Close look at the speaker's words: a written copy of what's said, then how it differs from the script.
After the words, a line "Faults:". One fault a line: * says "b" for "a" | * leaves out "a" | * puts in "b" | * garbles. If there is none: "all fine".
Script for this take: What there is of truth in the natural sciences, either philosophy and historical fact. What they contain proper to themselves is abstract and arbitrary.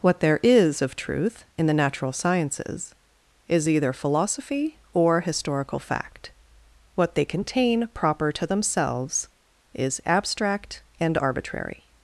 What there is of truth in the natural sciences, is either philosophy or historical fact. What they contain proper to themselves is abstract and arbitrary.
Faults:
* puts in "is"
* says "or" for "and"